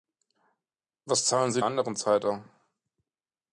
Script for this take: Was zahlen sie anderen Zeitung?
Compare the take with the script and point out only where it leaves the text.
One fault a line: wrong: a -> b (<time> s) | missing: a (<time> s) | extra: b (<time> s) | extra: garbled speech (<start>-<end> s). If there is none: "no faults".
no faults